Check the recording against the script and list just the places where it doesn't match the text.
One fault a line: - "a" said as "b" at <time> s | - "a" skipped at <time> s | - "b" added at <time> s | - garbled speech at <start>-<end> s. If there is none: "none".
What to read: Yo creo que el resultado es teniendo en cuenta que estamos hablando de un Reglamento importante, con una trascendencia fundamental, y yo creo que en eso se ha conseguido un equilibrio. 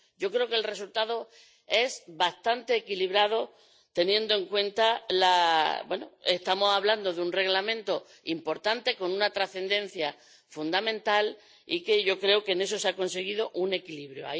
- "bastante equilibrado" added at 2.1 s